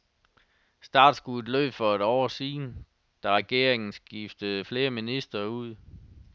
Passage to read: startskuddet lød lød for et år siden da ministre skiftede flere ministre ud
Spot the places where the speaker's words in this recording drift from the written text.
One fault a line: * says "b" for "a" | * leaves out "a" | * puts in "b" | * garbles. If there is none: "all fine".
* leaves out "lød"
* says "regeringen" for "ministre"